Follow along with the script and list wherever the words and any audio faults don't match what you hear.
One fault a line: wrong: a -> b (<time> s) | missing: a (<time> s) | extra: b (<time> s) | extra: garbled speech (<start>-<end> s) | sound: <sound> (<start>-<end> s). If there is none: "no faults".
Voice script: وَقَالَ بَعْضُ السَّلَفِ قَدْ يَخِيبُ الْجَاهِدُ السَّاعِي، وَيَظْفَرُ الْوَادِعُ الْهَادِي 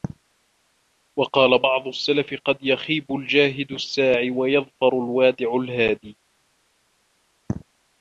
no faults